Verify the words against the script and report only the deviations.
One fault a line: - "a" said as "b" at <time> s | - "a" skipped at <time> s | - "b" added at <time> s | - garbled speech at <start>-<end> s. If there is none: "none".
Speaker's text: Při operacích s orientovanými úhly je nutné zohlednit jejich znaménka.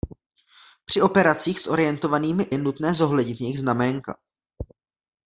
- "úhly" skipped at 2.5 s